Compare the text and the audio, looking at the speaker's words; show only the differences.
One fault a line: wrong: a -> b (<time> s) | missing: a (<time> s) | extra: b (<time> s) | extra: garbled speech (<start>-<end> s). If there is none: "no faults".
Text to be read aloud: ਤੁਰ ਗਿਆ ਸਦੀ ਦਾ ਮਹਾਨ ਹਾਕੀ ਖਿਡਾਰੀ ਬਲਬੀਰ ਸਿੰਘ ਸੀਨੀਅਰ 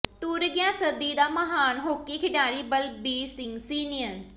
no faults